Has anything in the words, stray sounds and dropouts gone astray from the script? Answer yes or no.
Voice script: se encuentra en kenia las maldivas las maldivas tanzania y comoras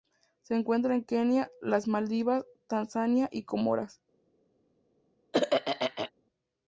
yes